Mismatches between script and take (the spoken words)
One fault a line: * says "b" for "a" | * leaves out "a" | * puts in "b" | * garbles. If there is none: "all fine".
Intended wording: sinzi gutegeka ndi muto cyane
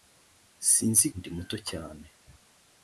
* leaves out "gutegeka"